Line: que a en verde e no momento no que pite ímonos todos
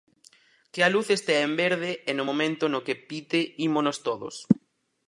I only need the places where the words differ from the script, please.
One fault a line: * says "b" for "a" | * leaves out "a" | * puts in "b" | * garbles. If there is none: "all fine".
* puts in "luz estea"